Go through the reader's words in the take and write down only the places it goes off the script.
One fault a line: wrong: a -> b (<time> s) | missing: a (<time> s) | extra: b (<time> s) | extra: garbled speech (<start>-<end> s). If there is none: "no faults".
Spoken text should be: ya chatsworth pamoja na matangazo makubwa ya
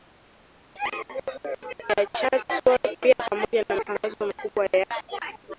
extra: pia (3.0 s)